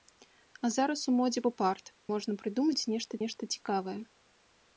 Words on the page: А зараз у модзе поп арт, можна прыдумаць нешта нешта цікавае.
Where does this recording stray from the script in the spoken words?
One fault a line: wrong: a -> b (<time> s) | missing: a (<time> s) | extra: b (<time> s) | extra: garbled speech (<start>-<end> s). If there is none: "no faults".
no faults